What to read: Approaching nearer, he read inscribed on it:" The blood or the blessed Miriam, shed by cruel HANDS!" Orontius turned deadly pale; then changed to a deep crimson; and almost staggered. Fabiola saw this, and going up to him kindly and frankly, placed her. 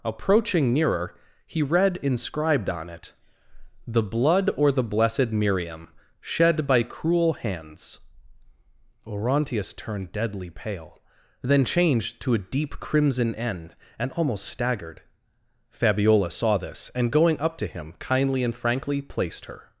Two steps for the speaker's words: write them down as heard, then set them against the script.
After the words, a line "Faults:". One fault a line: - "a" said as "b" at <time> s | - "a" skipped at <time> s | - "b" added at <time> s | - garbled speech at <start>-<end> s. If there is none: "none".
Approaching nearer, he read inscribed on it:" The blood or the blessed Miriam, shed by cruel HANDS!" Orontius turned deadly pale; then changed to a deep crimson; end and almost staggered. Fabiola saw this, and going up to him kindly and frankly, placed her.
Faults:
- "end" added at 13.3 s